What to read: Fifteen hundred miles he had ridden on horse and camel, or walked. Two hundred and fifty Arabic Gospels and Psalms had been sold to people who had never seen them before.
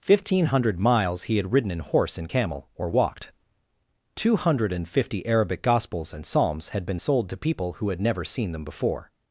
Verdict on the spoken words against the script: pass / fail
fail